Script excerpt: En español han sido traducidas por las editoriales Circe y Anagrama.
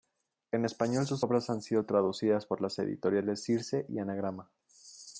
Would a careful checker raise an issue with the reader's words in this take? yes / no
yes